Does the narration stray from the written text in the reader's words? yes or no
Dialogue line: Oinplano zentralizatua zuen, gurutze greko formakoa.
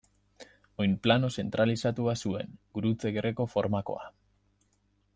no